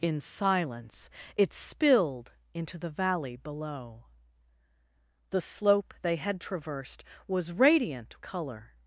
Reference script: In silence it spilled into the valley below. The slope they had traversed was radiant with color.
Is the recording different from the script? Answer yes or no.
yes